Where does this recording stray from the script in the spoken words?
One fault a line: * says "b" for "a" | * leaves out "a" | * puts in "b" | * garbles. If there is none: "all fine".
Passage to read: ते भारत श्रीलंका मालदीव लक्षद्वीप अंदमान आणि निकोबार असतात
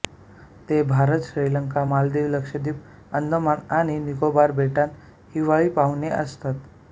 * puts in "बेटांत हिवाळी पाहुणे"